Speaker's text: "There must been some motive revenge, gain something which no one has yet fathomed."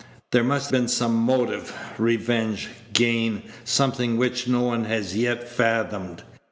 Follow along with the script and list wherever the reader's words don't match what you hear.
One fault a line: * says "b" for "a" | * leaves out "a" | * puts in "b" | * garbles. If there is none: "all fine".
all fine